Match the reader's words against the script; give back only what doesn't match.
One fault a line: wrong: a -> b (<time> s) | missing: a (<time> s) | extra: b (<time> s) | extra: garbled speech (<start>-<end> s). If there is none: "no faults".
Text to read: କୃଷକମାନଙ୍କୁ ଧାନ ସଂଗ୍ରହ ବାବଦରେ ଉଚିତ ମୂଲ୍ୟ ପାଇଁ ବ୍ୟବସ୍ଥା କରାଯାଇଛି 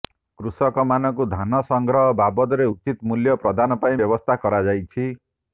extra: ପ୍ରଦାନ (3.4 s)